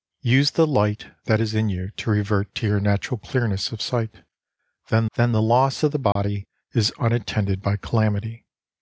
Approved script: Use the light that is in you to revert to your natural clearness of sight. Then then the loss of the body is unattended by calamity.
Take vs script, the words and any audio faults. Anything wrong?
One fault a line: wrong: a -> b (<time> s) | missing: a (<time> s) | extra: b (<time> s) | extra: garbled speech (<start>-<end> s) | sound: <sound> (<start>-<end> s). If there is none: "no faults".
sound: dropout (6.1-6.2 s)